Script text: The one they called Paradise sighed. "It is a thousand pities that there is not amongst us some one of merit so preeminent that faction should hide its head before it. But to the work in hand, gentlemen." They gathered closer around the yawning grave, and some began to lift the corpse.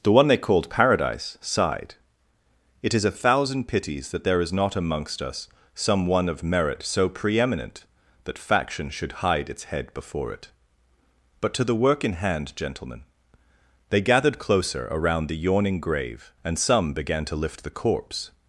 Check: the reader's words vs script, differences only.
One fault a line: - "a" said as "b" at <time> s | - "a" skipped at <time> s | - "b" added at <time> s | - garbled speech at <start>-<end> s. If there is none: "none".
none